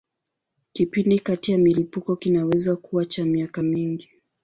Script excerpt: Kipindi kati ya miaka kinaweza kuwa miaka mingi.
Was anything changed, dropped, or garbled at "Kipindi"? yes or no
no